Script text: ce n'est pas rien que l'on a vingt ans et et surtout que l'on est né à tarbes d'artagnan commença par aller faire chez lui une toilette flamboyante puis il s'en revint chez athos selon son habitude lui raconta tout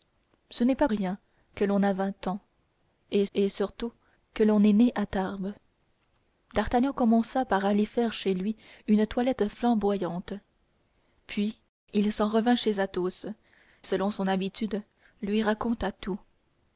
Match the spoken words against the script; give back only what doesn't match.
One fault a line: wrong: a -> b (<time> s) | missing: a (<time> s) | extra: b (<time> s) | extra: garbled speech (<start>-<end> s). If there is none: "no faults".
no faults